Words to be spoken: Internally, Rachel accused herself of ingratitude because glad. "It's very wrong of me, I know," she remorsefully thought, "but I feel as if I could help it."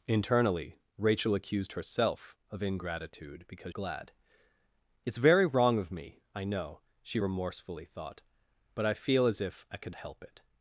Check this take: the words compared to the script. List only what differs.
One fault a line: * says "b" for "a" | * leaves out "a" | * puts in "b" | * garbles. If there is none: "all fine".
all fine